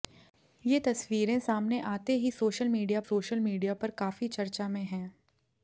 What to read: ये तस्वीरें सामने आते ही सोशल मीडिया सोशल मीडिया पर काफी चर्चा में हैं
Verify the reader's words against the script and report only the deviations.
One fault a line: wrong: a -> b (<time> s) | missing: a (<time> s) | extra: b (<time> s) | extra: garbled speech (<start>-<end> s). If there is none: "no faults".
no faults